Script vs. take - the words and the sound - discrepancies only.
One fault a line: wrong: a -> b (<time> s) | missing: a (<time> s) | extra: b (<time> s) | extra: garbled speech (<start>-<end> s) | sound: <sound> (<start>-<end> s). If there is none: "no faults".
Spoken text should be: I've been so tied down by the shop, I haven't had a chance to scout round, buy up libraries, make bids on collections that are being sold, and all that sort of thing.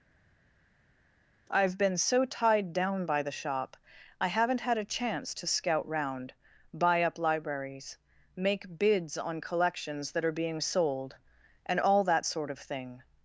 no faults